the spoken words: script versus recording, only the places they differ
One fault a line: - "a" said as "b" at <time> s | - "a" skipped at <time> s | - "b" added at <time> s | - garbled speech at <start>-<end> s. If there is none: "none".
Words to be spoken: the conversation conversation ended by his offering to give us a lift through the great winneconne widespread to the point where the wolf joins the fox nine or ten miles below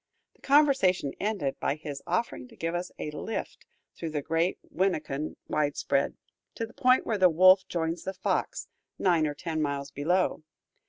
- "conversation" skipped at 1.1 s